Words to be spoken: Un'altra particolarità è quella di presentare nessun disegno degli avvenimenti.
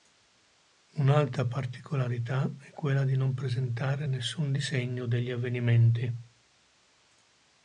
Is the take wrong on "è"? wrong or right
right